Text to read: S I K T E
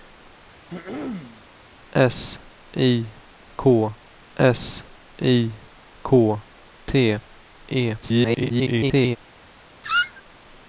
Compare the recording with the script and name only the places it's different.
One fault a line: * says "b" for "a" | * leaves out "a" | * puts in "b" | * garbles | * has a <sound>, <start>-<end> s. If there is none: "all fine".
* has a throat clearing, 0.7-1.4 s
* puts in "s I K"
* garbles
* has a squeak, 9.8-10.2 s